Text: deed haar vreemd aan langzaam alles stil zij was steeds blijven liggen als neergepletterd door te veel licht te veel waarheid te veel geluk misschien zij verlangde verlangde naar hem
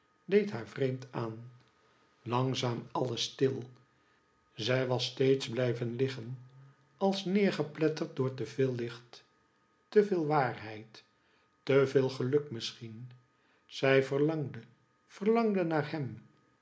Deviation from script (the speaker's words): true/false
false